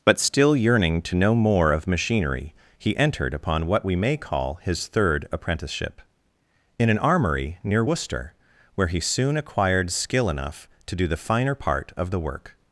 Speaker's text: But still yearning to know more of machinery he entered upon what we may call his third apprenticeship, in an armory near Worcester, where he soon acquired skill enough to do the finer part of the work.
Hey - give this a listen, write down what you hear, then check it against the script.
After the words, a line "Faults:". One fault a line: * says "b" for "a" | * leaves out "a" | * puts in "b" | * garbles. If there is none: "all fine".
But still yearning to know more of machinery he entered upon what we may call his third apprenticeship, in an armory near Worcester, where he soon acquired skill enough to do the finer part of the work.
Faults:
all fine